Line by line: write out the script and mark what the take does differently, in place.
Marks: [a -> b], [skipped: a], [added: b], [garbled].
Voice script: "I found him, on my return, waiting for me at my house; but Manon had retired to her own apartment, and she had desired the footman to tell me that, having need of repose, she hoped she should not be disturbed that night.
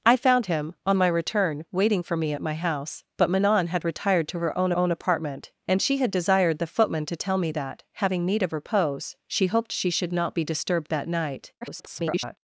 "I found him, on my return, waiting for me at my house; but Manon had retired to her own [added: own] apartment, and she had desired the footman to tell me that, having need of repose, she hoped she should not be disturbed that night. [garbled]